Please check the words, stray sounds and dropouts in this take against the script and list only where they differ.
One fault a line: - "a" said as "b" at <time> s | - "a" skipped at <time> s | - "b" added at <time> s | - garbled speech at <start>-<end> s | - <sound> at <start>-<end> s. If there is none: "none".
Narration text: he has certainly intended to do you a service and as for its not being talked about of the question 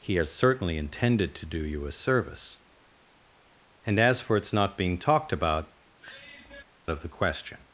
- sigh at 6.0-6.6 s